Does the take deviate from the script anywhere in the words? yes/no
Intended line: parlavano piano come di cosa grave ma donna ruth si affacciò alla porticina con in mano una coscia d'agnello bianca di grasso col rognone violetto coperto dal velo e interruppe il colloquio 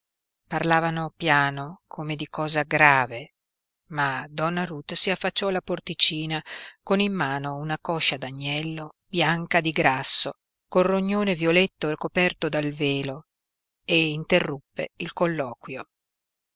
no